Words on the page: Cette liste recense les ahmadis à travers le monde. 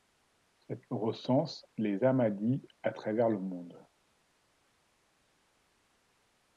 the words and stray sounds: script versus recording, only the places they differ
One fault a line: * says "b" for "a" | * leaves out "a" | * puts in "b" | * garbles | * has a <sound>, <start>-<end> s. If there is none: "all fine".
* leaves out "liste"